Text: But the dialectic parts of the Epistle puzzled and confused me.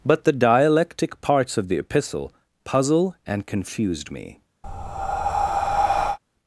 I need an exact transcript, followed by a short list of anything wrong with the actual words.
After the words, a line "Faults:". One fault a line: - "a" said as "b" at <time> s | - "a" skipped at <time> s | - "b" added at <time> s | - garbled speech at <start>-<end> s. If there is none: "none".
But the dialectic parts of the Epistle puzzle and confused me.
Faults:
- "puzzled" said as "puzzle" at 2.6 s